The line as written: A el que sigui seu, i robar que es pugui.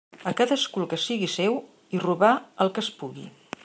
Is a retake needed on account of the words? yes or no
yes